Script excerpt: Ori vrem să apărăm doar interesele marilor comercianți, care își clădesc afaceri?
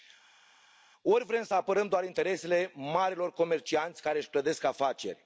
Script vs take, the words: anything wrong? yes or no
no